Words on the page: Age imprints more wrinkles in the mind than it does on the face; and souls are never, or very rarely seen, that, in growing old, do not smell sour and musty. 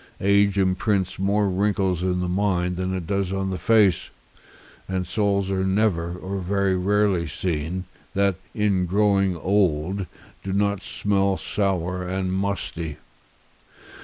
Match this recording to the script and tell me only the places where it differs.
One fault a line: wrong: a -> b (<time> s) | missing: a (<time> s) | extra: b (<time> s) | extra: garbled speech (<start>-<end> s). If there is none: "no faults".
no faults